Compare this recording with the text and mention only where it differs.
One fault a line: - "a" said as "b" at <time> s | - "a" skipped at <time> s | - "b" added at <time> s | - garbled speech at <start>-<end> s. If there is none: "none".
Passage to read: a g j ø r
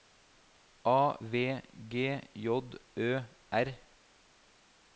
- "v" added at 1.2 s